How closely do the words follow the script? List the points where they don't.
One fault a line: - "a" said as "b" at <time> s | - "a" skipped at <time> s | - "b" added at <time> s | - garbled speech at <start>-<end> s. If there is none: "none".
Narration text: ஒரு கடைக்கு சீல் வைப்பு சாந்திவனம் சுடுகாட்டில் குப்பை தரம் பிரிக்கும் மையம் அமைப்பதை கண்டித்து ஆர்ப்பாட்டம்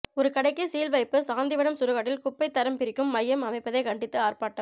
none